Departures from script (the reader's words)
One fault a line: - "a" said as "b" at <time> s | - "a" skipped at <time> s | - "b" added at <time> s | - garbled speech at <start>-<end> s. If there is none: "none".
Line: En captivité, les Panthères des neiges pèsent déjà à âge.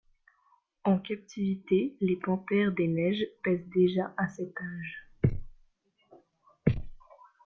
- "cet" added at 4.3 s